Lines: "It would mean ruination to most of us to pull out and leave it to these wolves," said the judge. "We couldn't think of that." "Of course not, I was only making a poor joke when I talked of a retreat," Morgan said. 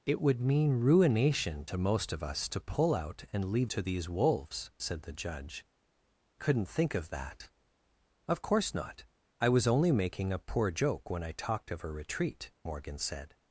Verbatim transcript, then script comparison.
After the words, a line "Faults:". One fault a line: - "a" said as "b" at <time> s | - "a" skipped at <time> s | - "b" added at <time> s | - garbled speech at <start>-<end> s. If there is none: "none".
"It would mean ruination to most of us to pull out and leave to these wolves," said the judge. "Couldn't think of that." "Of course not, I was only making a poor joke when I talked of a retreat," Morgan said.
Faults:
- "it" skipped at 3.7 s
- "We" skipped at 5.7 s